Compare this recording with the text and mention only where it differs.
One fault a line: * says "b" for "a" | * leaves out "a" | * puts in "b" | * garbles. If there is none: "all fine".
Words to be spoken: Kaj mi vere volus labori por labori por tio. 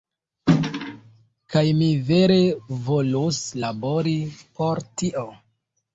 * leaves out "labori por"